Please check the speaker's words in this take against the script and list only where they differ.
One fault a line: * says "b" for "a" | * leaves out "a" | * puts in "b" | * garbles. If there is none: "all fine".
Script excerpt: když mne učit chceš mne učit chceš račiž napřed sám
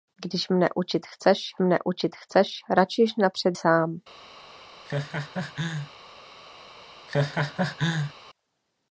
all fine